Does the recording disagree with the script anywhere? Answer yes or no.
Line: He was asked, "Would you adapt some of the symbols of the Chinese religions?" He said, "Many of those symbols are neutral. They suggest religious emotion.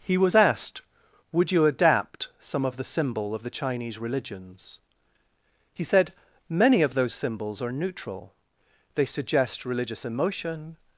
yes